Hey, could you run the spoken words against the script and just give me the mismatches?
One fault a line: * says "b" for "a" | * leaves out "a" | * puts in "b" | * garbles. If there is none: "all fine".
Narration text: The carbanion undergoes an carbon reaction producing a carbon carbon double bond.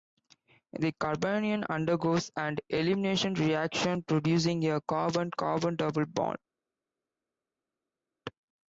* says "elimination" for "carbon"